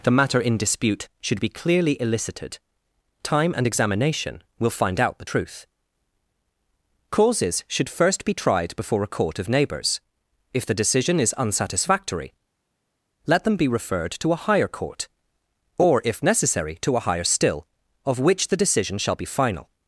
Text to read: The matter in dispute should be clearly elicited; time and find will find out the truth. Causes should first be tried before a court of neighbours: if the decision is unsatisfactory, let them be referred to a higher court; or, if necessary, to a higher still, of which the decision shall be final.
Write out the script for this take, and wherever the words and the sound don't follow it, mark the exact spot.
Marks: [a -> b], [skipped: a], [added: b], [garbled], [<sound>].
The matter in dispute should be clearly elicited; time and [find -> examination] will find out the truth. Causes should first be tried before a court of neighbours: if the decision is unsatisfactory, let them be referred to a higher court; or, if necessary, to a higher still, of which the decision shall be final.